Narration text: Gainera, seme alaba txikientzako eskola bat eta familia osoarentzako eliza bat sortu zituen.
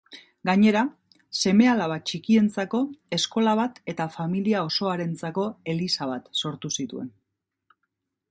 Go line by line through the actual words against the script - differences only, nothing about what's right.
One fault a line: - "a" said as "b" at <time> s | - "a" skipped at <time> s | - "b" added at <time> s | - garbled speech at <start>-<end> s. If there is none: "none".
none